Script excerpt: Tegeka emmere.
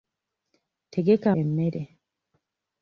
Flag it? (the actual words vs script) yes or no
no